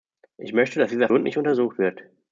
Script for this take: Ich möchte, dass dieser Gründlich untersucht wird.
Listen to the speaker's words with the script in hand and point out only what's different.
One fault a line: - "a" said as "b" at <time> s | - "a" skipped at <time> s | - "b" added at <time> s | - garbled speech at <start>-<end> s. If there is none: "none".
none